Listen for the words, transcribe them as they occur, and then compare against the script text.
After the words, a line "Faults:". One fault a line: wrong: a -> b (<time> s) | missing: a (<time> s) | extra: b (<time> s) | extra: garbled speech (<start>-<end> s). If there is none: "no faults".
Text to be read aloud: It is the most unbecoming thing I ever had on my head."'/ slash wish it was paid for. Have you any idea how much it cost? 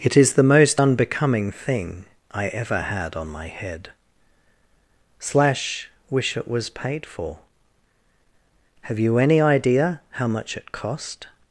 It is the most unbecoming thing I ever had on my head."'/ slash wish it was paid for. Have you any idea how much it cost?
Faults:
no faults